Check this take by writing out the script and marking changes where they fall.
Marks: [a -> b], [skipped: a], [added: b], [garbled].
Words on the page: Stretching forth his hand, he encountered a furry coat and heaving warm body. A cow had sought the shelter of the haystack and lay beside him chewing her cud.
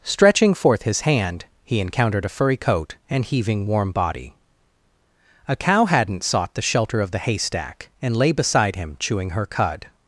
Stretching forth his hand, he encountered a furry coat and heaving warm body. A cow [had -> hadn't] sought the shelter of the haystack and lay beside him chewing her cud.